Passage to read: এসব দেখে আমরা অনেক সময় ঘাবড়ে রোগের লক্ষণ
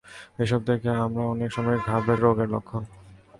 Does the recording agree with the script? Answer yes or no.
yes